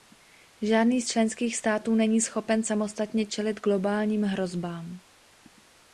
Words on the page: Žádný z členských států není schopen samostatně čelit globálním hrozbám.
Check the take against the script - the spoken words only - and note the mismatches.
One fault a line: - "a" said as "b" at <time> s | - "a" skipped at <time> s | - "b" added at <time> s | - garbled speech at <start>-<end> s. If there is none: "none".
none